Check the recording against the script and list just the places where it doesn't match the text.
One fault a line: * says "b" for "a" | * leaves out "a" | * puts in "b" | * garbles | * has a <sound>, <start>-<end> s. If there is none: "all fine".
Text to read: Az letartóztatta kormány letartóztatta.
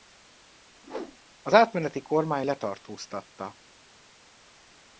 * has a whoosh, 0.8-1.2 s
* says "átmeneti" for "letartóztatta"